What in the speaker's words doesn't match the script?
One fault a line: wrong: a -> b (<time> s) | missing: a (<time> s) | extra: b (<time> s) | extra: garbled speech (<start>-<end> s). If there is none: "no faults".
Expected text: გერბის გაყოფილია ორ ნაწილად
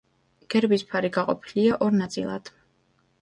extra: ფარი (0.9 s)